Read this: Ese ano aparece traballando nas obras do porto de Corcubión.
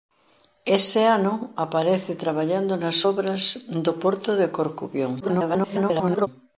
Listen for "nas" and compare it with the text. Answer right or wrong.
right